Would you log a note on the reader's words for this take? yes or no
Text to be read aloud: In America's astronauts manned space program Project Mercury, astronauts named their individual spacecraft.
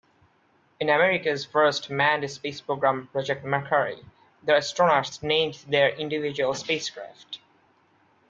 yes